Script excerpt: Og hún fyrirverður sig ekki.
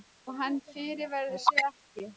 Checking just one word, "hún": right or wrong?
wrong